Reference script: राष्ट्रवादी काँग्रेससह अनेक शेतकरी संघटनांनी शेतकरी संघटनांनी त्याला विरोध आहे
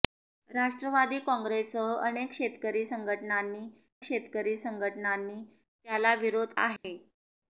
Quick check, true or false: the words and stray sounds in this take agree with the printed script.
false